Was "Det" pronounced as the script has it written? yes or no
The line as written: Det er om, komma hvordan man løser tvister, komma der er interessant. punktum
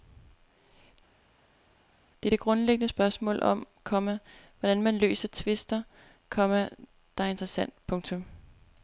yes